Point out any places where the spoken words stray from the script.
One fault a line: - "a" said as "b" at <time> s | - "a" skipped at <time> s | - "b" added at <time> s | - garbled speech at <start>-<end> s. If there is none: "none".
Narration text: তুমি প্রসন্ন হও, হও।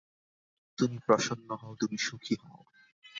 - "তুমি সুখী" added at 1.7 s